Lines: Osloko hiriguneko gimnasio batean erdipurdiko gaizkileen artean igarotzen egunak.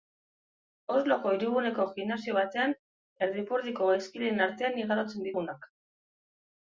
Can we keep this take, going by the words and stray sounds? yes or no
yes